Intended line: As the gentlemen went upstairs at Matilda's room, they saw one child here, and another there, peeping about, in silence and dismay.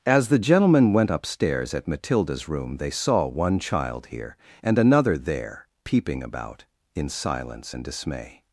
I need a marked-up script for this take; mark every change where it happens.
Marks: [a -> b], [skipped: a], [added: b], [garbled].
As the gentlemen went upstairs at Matilda's room, they saw one child here, and another there, peeping about, in silence and dismay.